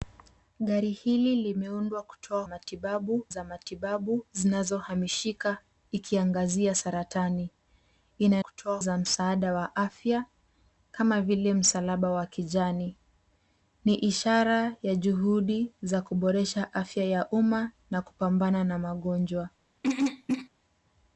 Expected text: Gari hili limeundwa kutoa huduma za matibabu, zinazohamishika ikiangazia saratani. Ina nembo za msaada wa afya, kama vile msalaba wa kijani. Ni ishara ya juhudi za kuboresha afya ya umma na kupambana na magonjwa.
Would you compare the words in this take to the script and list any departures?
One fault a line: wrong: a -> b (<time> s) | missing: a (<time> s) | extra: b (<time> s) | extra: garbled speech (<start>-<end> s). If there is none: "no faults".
wrong: huduma -> matibabu (2.4 s)
wrong: nembo -> kutoa (8.4 s)